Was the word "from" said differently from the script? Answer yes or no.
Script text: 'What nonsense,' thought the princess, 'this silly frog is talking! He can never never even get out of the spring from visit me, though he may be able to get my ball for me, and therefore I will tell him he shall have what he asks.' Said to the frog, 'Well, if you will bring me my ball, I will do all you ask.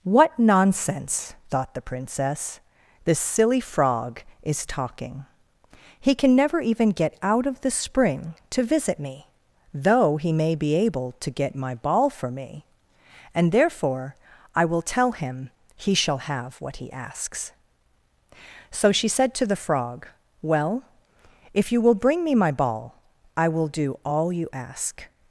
yes